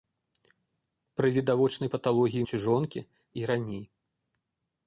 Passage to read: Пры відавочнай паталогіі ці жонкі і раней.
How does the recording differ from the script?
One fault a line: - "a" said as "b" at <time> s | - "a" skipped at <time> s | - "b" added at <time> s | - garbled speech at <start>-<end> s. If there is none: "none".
none